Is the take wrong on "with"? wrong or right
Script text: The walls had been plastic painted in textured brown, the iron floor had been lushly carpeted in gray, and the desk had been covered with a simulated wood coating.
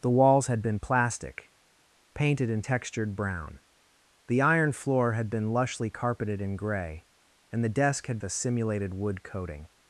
wrong